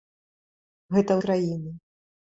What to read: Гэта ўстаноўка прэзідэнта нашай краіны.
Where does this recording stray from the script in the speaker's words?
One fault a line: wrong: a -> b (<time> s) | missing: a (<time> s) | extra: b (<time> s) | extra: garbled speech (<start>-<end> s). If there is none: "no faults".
missing: ўстаноўка прэзідэнта нашай (1.2 s)